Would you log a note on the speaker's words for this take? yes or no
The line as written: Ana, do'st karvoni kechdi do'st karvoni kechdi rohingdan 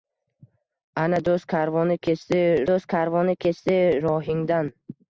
no